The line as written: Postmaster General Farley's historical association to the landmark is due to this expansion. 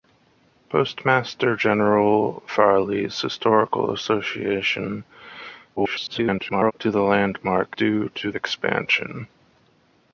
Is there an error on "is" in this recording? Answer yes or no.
yes